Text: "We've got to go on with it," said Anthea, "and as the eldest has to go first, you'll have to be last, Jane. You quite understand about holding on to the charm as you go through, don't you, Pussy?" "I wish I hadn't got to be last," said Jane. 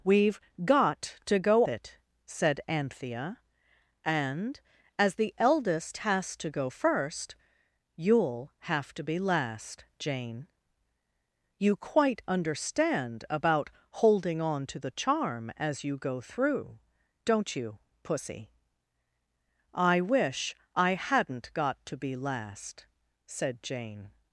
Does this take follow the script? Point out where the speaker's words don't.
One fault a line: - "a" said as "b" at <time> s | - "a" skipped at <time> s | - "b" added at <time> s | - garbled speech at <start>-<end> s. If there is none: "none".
- "on with" skipped at 1.6 s